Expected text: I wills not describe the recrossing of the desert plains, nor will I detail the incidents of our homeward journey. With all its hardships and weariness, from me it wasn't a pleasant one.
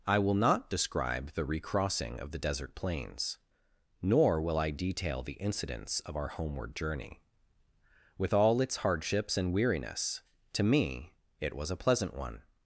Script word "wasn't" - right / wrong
wrong